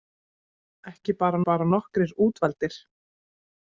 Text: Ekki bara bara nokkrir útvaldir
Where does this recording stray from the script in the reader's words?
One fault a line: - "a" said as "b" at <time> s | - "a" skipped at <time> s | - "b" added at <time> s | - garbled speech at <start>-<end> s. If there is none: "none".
none